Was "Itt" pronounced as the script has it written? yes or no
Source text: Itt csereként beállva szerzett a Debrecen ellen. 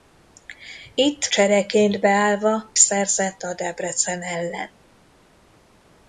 yes